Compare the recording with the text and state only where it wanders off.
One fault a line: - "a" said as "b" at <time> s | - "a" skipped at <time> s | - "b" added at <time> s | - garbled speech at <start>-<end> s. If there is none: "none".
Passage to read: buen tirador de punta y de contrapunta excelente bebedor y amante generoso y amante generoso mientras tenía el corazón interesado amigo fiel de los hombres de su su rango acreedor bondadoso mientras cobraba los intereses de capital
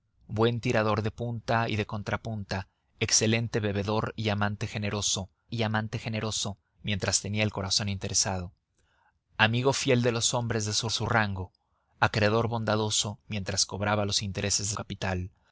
none